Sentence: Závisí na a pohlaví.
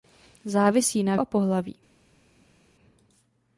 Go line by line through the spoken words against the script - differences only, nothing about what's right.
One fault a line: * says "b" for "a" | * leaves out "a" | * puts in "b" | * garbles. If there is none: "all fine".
all fine